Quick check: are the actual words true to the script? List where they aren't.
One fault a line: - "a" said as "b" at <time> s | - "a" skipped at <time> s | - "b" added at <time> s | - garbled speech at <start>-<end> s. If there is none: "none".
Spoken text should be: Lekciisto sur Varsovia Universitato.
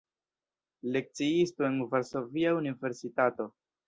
- "sur" said as "en" at 1.6 s